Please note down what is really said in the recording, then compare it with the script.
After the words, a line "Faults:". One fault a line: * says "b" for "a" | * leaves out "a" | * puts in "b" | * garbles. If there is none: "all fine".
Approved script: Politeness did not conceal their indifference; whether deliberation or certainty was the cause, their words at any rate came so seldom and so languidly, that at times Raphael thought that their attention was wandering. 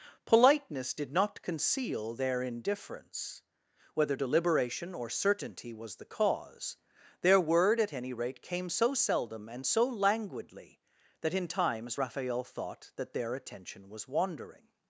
Politeness did not conceal their indifference; whether deliberation or certainty was the cause, their word at any rate came so seldom and so languidly, that in times Raphael thought that their attention was wandering.
Faults:
* says "word" for "words"
* says "in" for "at"